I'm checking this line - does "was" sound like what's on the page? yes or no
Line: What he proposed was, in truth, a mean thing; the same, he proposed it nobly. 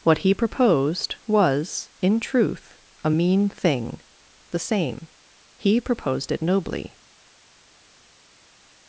yes